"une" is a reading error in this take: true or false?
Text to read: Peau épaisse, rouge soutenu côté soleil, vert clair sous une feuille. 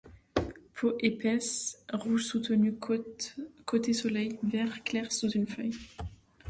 false